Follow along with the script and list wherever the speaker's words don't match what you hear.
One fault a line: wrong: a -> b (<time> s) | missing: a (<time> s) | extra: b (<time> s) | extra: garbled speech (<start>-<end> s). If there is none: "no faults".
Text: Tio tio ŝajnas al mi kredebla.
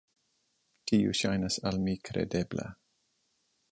missing: tio (1.1 s)